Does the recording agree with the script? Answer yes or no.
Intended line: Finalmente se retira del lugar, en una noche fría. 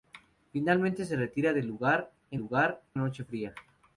no